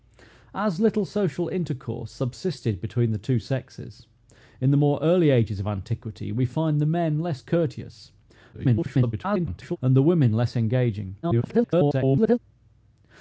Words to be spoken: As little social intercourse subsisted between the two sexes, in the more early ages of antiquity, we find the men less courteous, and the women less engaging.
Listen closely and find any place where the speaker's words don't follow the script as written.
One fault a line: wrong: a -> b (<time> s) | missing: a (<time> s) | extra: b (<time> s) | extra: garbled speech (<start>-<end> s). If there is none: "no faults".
extra: garbled speech (8.5-9.8 s)
extra: garbled speech (11.2-12.4 s)